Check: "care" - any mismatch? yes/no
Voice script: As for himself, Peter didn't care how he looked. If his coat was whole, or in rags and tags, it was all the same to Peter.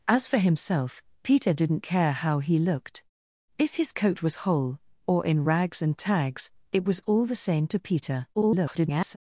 no